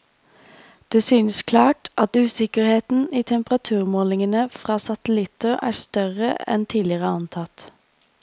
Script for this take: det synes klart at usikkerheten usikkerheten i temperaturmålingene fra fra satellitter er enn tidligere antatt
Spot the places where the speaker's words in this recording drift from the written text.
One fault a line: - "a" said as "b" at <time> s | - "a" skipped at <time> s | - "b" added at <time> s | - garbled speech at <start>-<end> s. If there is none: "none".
- "usikkerheten" skipped at 3.1 s
- "fra" skipped at 4.8 s
- "større" added at 5.8 s